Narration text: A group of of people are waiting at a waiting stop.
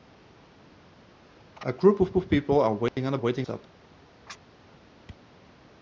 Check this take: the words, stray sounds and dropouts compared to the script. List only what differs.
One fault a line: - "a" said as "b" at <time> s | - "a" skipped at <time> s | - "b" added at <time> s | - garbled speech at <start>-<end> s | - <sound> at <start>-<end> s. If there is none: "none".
- dropout at 2.9-3.0 s